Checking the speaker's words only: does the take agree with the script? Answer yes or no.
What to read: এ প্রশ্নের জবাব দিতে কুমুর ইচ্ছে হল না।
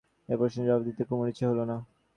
yes